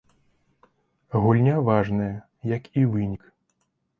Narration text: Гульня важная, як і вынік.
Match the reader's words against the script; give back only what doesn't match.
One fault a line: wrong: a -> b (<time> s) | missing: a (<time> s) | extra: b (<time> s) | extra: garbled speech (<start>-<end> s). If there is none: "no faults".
no faults